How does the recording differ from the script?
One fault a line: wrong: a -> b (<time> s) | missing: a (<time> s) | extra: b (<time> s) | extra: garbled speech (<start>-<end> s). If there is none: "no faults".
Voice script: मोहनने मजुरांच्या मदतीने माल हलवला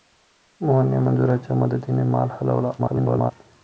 extra: garbled speech (2.8-3.3 s)